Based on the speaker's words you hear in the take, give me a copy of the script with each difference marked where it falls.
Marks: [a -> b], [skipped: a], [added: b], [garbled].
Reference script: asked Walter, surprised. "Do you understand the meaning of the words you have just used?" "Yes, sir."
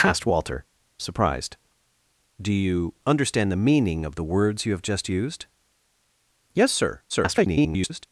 asked Walter, surprised. "Do you understand the meaning of the words you have just used?" "Yes, sir." [garbled]